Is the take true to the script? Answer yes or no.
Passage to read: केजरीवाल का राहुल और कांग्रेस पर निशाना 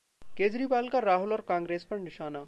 yes